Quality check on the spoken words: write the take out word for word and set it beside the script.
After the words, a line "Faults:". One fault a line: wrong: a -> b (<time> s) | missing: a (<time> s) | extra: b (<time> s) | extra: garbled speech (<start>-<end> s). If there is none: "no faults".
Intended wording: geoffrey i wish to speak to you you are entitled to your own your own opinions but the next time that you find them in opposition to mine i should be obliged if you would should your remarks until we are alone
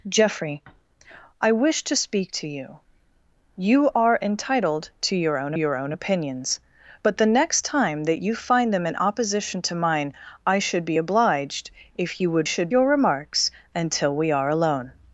geoffrey i wish to speak to you you are entitled to your own your own opinions but the next time that you find them in opposition to mine i should be obliged if you would should your remarks until we are alone
Faults:
no faults